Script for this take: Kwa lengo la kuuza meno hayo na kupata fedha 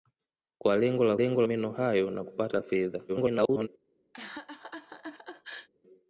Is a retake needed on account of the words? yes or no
yes